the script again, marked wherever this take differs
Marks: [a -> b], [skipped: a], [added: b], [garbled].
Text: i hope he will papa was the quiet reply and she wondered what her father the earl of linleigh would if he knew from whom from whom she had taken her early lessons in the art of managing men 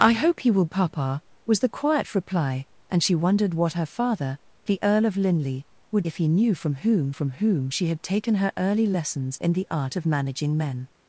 i hope he will papa was the quiet reply and she wondered what her father the earl of linleigh would if he knew from whom from whom she had taken her early lessons in the art of managing men